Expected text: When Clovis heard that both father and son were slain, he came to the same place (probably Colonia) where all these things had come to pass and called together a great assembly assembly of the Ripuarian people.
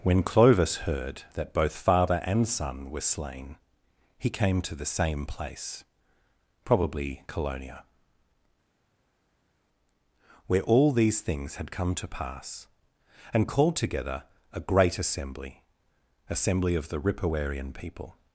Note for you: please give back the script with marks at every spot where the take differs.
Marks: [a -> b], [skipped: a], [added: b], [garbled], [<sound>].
When Clovis heard that both father and son were slain, he came to the same place (probably Colonia) where all these things had come to pass and called together a great assembly assembly of the Ripuarian people.